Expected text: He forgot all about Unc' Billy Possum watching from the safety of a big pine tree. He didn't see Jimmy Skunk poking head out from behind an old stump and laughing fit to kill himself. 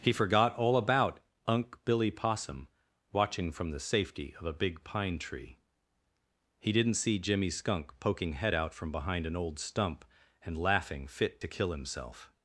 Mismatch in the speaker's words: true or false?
false